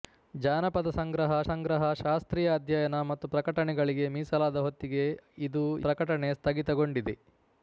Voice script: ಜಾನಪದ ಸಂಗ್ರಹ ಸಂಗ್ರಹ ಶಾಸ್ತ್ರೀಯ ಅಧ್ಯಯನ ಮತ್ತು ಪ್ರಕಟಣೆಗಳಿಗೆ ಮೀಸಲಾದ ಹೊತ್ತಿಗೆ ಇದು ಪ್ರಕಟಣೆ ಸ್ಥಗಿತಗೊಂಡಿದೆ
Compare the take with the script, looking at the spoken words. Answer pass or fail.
pass